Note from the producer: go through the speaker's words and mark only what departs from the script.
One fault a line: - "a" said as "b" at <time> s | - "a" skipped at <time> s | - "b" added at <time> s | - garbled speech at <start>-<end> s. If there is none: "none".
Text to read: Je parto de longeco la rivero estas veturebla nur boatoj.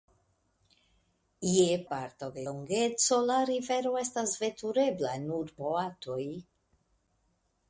none